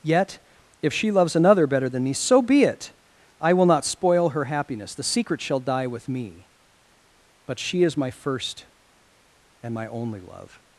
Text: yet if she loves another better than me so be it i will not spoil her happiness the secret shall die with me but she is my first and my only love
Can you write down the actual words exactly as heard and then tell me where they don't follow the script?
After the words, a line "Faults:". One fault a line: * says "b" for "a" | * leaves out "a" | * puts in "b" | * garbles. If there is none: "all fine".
yet if she loves another better than me so be it i will not spoil her happiness the secret shall die with me but she is my first and my only love
Faults:
all fine